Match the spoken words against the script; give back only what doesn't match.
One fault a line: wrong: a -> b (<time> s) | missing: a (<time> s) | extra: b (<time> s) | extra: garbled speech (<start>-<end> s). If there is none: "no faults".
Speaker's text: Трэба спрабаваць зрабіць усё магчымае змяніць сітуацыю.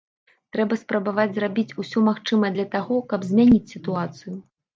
extra: для таго каб (2.6 s)